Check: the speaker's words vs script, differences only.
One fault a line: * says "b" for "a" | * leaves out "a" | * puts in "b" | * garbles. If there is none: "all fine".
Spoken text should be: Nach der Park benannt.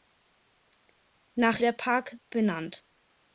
all fine